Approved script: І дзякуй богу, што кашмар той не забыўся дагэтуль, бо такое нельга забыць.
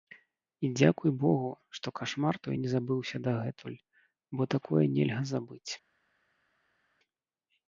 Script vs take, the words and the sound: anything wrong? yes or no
no